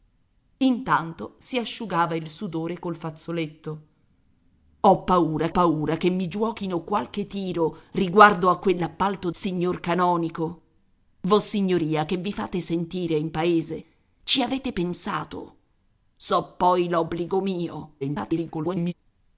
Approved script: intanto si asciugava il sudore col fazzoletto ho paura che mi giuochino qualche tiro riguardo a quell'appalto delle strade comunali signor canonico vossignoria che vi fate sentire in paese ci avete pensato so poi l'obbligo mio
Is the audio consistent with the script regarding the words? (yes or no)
no